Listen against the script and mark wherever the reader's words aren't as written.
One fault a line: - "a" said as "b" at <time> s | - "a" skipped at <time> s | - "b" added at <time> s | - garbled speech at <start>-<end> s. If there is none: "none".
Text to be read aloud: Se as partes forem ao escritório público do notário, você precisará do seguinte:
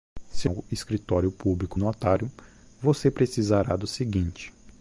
- "as partes forem" skipped at 0.5 s
- "do" skipped at 1.8 s